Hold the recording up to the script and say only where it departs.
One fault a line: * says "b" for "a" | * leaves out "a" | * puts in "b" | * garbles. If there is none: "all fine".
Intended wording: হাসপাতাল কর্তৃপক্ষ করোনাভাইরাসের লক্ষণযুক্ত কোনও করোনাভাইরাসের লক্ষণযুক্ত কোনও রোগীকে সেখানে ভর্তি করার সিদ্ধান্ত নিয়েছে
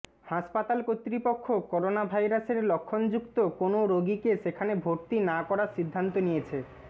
* leaves out "করোনাভাইরাসের লক্ষণযুক্ত কোনও"
* puts in "না"